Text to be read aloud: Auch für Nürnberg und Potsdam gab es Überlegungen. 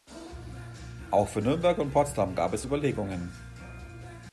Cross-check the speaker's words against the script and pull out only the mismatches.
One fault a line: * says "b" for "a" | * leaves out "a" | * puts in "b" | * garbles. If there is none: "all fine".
all fine